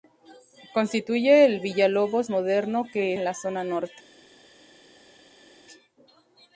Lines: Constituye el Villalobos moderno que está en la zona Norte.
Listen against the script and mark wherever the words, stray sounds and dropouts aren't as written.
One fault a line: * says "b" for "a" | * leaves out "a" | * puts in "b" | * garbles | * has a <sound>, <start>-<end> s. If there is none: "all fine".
* leaves out "está"